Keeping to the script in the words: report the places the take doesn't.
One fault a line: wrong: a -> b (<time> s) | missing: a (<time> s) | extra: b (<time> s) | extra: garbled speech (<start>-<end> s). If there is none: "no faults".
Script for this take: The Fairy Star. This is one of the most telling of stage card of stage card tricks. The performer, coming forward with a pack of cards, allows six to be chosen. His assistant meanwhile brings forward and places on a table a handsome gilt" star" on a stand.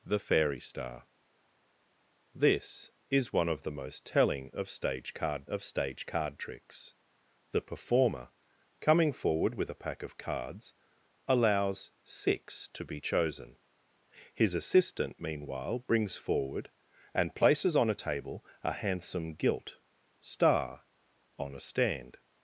no faults